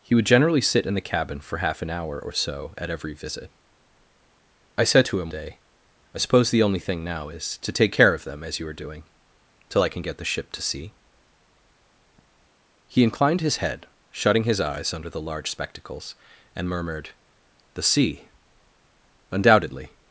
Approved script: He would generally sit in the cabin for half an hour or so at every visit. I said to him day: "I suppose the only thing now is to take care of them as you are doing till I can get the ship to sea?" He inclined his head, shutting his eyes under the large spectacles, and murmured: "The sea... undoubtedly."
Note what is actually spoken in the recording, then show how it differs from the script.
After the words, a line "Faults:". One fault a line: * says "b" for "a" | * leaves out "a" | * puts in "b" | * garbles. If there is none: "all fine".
He would generally sit in the cabin for half an hour or so at every visit. I said to him day: "I suppose the only thing now is to take care of them as you are doing till I can get the ship to sea?" He inclined his head, shutting his eyes under the large spectacles, and murmured: "The sea... undoubtedly."
Faults:
all fine